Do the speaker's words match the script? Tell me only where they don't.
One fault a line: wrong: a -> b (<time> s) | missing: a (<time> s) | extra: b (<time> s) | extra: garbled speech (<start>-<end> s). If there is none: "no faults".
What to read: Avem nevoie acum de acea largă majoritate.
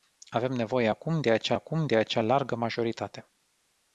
extra: acum de acea (1.5 s)